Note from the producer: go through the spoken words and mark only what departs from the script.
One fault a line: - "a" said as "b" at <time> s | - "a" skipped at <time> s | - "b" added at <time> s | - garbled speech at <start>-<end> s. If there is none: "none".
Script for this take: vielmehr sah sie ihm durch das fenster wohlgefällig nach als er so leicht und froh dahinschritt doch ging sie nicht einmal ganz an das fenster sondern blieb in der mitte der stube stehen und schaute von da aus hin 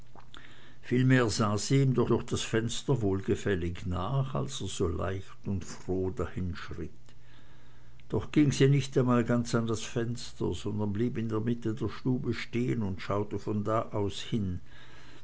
- "durch" added at 2.1 s